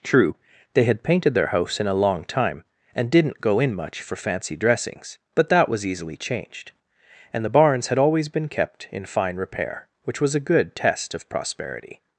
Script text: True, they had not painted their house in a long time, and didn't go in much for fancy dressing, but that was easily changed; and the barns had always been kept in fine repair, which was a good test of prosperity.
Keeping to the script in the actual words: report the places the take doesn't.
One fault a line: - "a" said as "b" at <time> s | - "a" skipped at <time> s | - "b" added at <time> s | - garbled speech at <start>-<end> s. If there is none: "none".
- "not" skipped at 1.0 s
- "dressing" said as "dressings" at 4.5 s